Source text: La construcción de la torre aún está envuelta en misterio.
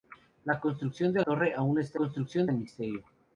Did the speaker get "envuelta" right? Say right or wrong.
wrong